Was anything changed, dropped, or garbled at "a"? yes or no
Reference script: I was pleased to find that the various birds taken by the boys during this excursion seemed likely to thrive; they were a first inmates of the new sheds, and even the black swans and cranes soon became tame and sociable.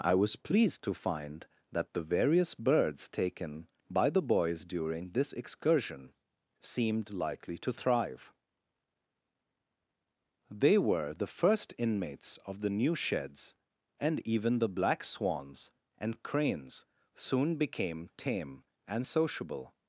yes